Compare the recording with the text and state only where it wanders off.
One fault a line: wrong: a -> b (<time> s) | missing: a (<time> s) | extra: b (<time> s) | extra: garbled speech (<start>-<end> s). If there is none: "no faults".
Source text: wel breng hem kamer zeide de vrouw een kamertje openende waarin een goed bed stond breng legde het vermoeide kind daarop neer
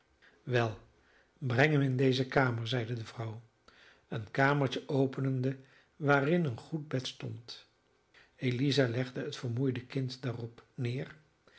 extra: in deze (1.8 s)
wrong: breng -> eliza (8.3 s)